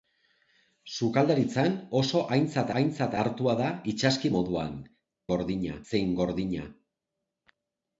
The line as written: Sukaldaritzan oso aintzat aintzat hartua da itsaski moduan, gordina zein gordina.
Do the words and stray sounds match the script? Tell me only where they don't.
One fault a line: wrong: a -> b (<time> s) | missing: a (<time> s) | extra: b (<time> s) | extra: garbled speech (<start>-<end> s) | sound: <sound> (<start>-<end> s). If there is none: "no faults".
no faults